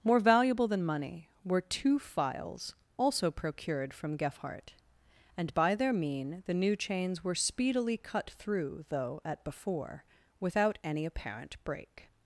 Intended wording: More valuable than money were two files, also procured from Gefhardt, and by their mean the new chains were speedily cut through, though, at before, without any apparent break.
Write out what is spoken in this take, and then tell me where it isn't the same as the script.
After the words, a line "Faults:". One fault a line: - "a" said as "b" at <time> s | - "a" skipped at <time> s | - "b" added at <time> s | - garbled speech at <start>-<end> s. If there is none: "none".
More valuable than money were two files, also procured from Gefhardt, and by their mean the new chains were speedily cut through, though, at before, without any apparent break.
Faults:
none